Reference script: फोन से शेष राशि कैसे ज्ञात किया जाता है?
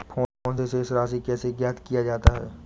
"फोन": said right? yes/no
yes